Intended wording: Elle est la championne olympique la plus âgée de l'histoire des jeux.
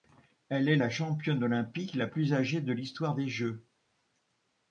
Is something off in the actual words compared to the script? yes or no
no